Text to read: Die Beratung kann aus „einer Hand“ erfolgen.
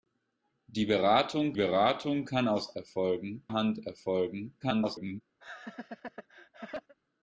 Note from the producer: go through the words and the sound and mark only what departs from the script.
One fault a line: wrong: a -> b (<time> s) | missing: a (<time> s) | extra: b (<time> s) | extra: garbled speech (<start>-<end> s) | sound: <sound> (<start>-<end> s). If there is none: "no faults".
extra: Beratung (1.6 s)
wrong: einer -> erfolgen (2.8 s)
extra: garbled speech (4.6-5.2 s)
sound: laugh (5.4-6.9 s)